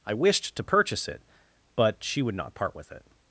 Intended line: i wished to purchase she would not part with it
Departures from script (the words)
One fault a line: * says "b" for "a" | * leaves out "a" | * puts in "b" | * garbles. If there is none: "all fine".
* puts in "it but"